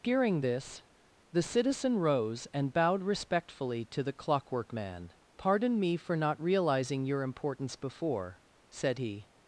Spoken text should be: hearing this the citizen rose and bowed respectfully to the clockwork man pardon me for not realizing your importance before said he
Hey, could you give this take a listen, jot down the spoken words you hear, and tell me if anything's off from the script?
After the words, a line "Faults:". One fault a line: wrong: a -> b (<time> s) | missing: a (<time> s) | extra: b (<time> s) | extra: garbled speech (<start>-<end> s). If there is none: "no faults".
hearing this the citizen rose and bowed respectfully to the clockwork man pardon me for not realizing your importance before said he
Faults:
no faults